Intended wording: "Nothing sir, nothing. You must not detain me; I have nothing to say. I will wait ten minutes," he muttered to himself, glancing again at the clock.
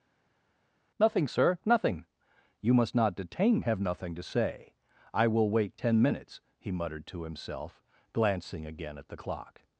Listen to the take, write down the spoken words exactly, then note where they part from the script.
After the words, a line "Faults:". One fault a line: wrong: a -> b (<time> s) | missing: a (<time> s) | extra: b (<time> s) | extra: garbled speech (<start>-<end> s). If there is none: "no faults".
"Nothing sir, nothing. You must not detain have nothing to say. I will wait ten minutes," he muttered to himself, glancing again at the clock.
Faults:
missing: me I (3.6 s)